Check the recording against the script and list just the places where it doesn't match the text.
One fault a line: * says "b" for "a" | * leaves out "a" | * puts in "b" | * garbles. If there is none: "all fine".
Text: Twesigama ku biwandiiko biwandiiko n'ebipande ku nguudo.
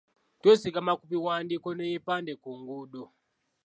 * leaves out "biwandiiko"